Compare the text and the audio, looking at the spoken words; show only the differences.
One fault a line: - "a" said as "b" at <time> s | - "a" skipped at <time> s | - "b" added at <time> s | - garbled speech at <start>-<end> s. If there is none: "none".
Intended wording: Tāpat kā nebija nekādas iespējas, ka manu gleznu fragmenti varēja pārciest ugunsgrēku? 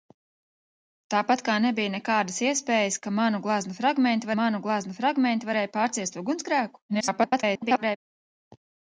- "manu gleznu fragmenti" added at 4.4 s
- garbled speech at 6.9-8.0 s